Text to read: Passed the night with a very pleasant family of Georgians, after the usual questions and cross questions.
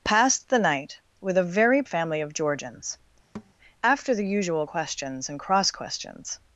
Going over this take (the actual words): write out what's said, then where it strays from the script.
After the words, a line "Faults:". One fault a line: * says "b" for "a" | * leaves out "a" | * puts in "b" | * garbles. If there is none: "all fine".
Passed the night with a very family of Georgians, after the usual questions and cross questions.
Faults:
* leaves out "pleasant"